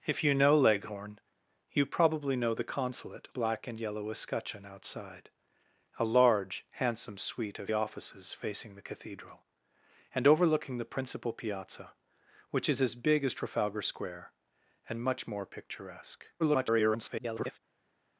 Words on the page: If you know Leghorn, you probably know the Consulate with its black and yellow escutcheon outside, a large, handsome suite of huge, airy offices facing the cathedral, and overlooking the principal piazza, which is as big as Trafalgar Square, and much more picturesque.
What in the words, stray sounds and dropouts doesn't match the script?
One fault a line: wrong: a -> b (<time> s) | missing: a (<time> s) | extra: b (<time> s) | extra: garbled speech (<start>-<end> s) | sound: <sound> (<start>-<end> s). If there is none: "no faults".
missing: with its (3.3 s)
missing: huge airy (7.7 s)
extra: garbled speech (16.4-17.6 s)